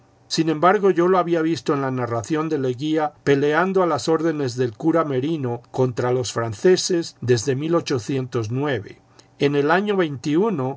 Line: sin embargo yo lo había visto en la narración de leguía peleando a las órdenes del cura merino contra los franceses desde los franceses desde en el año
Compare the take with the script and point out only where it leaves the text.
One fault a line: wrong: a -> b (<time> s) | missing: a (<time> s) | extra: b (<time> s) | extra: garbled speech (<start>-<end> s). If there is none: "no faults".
missing: los franceses desde (7.5 s)